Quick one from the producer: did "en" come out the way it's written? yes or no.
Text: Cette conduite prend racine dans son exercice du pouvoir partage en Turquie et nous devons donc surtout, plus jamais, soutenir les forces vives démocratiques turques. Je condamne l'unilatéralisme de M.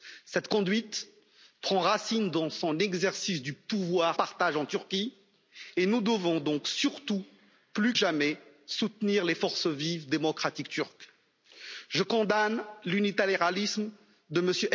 yes